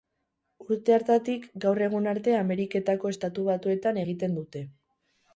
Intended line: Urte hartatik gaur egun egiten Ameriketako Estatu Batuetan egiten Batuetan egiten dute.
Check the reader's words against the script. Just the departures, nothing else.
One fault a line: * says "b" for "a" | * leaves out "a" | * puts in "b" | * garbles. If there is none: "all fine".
* says "arte" for "egiten"
* leaves out "Batuetan egiten"